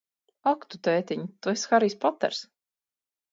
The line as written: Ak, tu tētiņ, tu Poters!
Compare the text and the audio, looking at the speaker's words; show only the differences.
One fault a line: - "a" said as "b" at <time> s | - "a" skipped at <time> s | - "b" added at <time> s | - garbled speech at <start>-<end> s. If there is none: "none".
- "esi Harijs" added at 1.5 s